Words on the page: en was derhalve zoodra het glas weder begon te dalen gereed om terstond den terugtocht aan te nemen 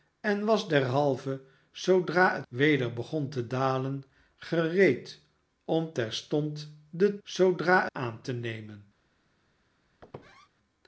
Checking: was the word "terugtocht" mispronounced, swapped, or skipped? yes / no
yes